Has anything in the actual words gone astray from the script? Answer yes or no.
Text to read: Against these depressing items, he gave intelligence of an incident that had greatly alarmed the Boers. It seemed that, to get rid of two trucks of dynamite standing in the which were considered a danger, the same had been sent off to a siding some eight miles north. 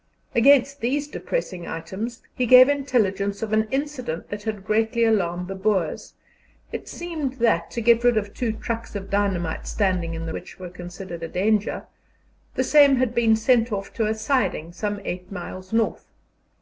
no